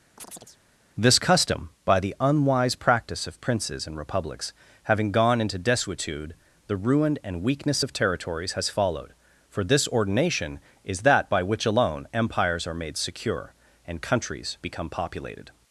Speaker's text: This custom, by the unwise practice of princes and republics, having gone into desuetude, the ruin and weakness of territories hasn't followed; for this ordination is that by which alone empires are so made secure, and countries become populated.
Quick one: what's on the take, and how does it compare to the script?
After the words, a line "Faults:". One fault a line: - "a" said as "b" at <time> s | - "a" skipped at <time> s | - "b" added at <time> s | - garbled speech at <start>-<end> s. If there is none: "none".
This custom, by the unwise practice of princes and republics, having gone into desuetude, the ruin and weakness of territories has followed; for this ordination is that by which alone empires are made secure, and countries become populated.
Faults:
- "hasn't" said as "has" at 8.5 s
- "so" skipped at 12.7 s